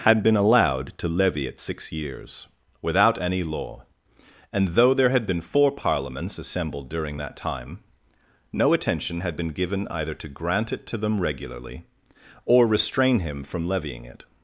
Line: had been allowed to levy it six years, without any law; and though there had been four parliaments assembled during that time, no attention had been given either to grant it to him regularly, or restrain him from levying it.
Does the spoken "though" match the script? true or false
true